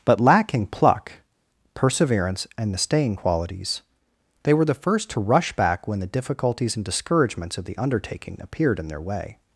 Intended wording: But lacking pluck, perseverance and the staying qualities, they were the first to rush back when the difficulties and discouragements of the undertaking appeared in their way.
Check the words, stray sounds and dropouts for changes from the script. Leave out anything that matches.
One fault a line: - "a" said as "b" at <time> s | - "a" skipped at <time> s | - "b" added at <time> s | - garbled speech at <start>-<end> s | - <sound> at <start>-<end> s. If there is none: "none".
none